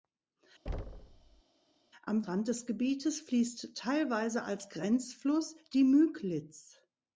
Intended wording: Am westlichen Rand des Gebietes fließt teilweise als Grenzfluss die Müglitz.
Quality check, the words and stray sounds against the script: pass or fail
fail